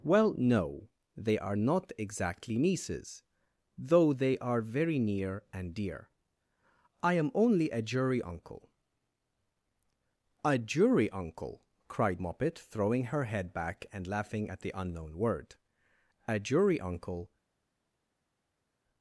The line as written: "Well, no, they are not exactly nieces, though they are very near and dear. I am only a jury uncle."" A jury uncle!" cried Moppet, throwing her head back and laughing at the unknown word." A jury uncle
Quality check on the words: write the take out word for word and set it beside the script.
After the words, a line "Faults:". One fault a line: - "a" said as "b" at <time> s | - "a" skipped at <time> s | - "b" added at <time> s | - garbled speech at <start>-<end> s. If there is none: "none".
"Well, no, they are not exactly nieces, though they are very near and dear. I am only a jury uncle."" A jury uncle!" cried Moppet, throwing her head back and laughing at the unknown word." A jury uncle
Faults:
none